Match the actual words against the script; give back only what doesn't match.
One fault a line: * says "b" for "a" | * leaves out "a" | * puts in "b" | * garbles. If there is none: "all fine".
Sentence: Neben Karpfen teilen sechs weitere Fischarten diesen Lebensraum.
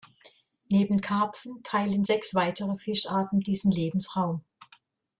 all fine